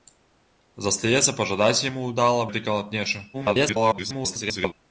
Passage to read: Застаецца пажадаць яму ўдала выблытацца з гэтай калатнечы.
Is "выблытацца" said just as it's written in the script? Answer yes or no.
no